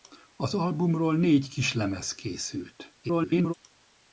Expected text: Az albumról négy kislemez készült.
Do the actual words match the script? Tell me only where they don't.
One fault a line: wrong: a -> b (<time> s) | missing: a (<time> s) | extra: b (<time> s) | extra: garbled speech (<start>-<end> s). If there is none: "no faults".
extra: garbled speech (3.0-3.5 s)